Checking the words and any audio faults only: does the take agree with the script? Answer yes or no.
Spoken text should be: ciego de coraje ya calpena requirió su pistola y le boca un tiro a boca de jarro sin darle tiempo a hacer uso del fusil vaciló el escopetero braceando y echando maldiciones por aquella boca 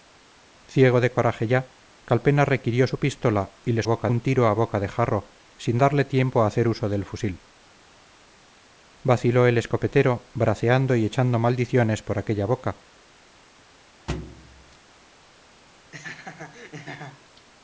no